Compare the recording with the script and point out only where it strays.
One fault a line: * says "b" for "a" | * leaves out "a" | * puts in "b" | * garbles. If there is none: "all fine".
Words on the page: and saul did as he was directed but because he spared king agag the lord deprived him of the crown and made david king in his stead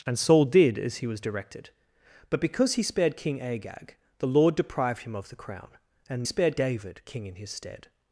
* says "spared" for "made"